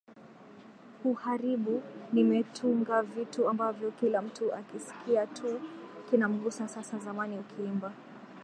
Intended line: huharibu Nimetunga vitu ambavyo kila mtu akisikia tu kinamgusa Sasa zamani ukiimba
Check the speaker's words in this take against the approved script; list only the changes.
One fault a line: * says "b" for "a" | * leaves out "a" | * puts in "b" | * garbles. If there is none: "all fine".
all fine